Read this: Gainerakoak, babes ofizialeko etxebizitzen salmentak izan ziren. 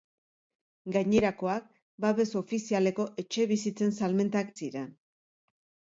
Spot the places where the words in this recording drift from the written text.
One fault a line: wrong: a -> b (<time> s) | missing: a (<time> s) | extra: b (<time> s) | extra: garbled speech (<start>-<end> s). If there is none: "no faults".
missing: izan (4.5 s)